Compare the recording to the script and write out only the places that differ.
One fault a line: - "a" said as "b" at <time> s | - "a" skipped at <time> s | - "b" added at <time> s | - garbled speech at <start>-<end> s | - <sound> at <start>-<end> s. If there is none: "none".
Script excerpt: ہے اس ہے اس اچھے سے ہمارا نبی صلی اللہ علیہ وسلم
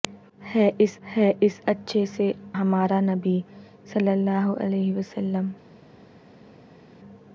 none